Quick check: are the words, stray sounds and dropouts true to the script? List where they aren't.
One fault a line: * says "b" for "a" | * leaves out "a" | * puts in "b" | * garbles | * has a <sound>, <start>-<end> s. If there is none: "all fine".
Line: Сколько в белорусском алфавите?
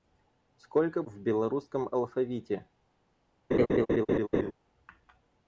* has a laugh, 3.5-4.5 s